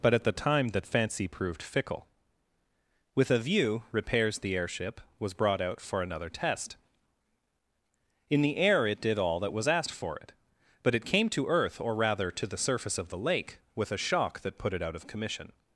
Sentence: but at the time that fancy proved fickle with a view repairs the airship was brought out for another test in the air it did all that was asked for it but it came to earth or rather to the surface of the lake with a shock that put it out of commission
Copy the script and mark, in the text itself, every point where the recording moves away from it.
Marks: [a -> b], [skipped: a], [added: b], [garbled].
but at the time that fancy proved fickle with a view repairs the airship was brought out for another test in the air it did all that was asked for it but it came to earth or rather to the surface of the lake with a shock that put it out of commission